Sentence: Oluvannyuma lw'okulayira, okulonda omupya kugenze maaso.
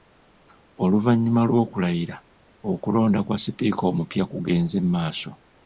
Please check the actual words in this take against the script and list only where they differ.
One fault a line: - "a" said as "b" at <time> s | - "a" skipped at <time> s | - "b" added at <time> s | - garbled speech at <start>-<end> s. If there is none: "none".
- "kwa Sipiika" added at 3.2 s